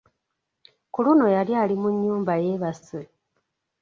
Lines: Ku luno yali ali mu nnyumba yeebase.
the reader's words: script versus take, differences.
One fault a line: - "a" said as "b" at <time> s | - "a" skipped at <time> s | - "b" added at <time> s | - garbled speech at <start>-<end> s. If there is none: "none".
none